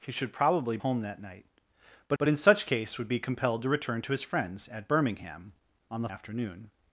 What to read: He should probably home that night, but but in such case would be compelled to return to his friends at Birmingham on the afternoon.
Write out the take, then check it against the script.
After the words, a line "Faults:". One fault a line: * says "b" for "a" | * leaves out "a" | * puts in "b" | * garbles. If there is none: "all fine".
He should probably home that night, but but in such case would be compelled to return to his friends at Birmingham on the afternoon.
Faults:
all fine